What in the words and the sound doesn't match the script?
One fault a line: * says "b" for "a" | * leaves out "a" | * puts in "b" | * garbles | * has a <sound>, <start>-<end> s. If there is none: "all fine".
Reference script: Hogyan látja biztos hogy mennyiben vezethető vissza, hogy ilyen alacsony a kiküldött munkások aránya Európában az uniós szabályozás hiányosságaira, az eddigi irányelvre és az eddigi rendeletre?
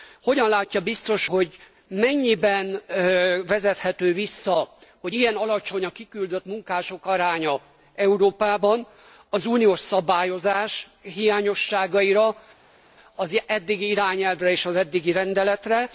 all fine